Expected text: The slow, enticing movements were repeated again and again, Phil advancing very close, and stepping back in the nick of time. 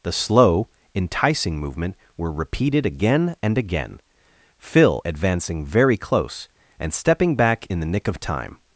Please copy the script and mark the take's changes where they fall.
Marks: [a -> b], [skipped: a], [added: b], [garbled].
The slow, enticing [movements -> movement] were repeated again and again, Phil advancing very close, and stepping back in the nick of time.